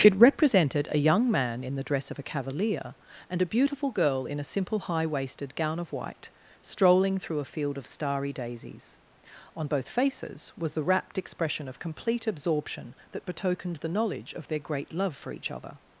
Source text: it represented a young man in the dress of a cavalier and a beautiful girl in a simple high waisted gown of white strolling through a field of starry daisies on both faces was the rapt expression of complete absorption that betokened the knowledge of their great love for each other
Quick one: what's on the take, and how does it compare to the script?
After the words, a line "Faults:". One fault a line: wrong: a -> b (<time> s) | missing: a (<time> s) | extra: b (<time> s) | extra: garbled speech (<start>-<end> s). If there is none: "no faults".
it represented a young man in the dress of a cavalier and a beautiful girl in a simple high waisted gown of white strolling through a field of starry daisies on both faces was the rapt expression of complete absorption that betokened the knowledge of their great love for each other
Faults:
no faults